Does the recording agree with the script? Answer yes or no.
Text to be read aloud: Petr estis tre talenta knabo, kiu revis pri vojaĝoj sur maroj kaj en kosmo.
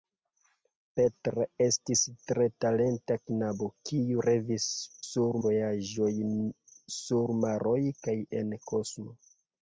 no